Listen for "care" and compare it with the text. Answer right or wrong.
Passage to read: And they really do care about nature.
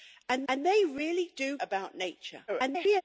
wrong